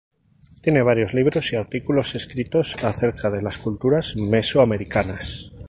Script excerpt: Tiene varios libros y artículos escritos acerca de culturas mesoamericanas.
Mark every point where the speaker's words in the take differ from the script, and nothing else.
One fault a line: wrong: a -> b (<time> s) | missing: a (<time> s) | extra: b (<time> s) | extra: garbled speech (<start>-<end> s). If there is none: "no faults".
extra: las (3.4 s)